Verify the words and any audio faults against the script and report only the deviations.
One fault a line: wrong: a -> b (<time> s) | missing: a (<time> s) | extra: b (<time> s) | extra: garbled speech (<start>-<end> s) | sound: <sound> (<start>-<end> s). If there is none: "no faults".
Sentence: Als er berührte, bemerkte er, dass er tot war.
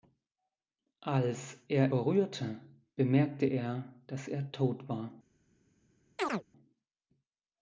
sound: chirp (6.2-6.4 s)